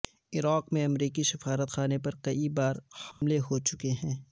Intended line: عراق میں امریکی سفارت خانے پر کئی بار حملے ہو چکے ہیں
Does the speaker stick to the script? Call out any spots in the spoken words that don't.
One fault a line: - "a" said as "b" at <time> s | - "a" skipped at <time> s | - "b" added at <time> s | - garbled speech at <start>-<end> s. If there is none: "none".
none